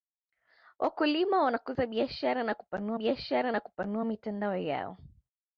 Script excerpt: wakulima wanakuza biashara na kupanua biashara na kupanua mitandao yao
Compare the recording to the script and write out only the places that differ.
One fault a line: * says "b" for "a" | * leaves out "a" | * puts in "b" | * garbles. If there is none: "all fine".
all fine